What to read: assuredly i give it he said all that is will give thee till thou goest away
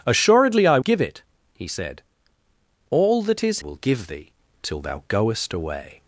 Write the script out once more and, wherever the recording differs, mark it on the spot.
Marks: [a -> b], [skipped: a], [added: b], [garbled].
assuredly i give it he said all that is will give thee till thou goest away